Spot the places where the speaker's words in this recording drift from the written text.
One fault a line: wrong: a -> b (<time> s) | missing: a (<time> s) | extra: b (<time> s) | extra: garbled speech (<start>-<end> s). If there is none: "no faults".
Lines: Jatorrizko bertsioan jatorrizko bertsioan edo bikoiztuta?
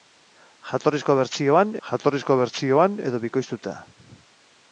no faults